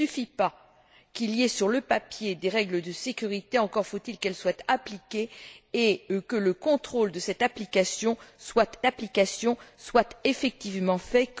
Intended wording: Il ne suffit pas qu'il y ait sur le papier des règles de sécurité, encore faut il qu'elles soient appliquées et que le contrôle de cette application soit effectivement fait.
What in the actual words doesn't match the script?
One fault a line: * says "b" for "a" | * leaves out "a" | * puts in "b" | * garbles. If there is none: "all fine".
* puts in "application soit"